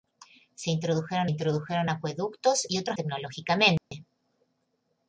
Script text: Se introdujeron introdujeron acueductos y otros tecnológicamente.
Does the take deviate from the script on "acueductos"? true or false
false